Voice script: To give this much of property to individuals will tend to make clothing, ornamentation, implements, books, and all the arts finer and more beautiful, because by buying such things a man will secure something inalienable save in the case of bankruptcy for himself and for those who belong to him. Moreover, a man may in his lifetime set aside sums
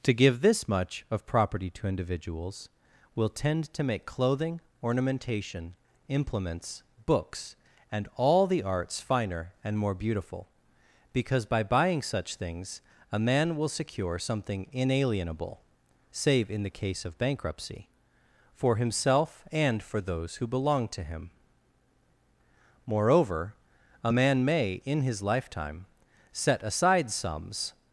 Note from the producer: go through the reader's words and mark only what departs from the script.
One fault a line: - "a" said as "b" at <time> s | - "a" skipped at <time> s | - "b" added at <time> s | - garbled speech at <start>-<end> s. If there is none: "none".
none